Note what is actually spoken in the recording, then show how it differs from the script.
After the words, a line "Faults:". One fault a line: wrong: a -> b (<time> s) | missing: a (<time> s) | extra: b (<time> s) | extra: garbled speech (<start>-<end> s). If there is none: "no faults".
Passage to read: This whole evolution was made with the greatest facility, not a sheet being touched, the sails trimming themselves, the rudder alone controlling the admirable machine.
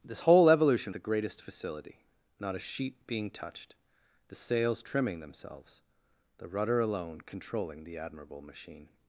This whole evolution the greatest facility, not a sheet being touched, the sails trimming themselves, the rudder alone controlling the admirable machine.
Faults:
missing: was made with (0.9 s)